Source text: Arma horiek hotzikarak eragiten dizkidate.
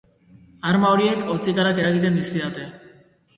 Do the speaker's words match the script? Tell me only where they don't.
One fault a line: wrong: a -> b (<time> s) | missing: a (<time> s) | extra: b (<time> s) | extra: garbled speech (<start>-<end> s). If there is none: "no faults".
no faults